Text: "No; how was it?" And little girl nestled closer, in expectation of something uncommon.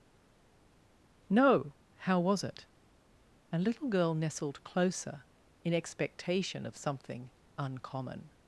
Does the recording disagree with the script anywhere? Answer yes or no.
no